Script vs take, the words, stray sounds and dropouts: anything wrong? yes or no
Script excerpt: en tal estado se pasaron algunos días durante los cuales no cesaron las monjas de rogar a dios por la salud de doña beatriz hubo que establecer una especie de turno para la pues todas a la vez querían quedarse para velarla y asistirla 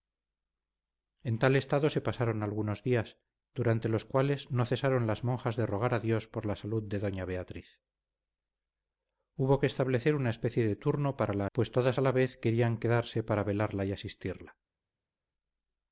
no